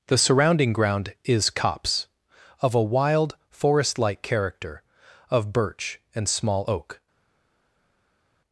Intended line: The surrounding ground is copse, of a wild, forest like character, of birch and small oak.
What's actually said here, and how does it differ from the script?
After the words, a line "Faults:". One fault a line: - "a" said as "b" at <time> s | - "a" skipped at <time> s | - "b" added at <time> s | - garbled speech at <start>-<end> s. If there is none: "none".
The surrounding ground is copse, of a wild, forest like character, of birch and small oak.
Faults:
none